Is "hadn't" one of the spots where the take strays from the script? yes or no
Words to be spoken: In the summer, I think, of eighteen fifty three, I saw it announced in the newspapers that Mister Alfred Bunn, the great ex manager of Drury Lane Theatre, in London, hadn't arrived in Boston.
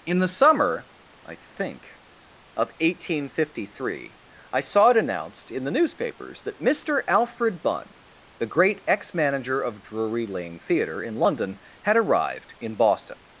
yes